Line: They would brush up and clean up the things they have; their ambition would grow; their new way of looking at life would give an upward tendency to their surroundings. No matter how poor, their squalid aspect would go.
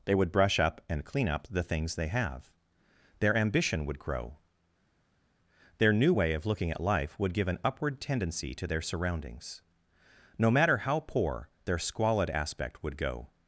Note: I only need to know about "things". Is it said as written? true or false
true